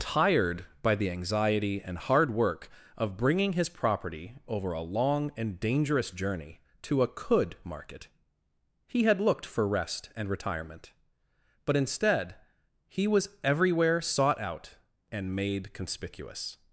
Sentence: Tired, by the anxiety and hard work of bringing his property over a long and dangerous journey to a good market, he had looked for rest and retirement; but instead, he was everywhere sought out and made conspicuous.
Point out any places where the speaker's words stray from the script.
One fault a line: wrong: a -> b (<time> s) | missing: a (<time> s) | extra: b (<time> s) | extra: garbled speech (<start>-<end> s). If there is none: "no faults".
wrong: good -> could (7.0 s)